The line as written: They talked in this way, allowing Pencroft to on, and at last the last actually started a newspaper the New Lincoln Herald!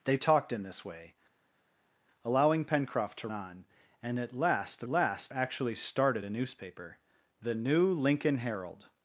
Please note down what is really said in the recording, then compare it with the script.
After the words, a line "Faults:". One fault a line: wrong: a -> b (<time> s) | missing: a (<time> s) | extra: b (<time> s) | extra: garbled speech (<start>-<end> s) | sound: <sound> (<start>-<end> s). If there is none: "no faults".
They talked in this way, allowing Pencroft to on, and at last the last actually started a newspaper the New Lincoln Herald!
Faults:
no faults